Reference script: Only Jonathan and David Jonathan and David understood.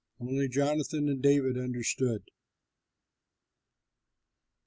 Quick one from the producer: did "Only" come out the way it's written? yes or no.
yes